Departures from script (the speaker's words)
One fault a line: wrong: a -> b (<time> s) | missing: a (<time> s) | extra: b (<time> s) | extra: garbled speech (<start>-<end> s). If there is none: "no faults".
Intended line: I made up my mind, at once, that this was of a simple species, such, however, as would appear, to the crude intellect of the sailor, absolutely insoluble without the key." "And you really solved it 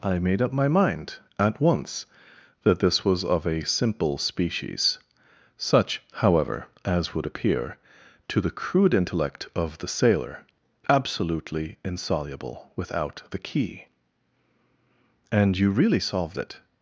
no faults